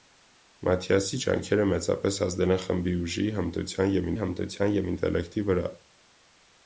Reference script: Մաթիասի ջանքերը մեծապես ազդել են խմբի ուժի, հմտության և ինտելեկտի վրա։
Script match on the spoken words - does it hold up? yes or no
no